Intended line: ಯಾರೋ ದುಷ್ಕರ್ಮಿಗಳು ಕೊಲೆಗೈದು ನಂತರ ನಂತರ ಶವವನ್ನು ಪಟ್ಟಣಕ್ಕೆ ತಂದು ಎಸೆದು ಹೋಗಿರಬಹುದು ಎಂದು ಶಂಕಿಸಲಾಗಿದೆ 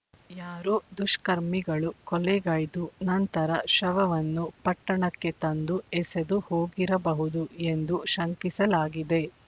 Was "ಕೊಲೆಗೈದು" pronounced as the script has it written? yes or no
yes